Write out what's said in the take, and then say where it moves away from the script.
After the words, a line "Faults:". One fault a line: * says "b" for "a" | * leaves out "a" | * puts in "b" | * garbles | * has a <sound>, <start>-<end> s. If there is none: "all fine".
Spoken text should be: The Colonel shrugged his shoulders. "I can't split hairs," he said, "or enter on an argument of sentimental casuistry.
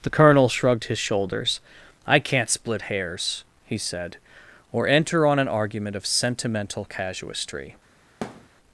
The Colonel shrugged his shoulders. "I can't split hairs," he said, "or enter on an argument of sentimental casuistry.
Faults:
* has a thud, 8.2-8.5 s